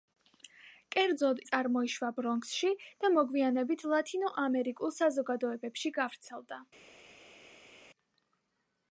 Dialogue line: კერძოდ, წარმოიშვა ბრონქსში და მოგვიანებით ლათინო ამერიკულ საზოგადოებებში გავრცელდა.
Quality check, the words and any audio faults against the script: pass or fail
pass